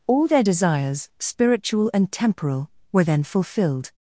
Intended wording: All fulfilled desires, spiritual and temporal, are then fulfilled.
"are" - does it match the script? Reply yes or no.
no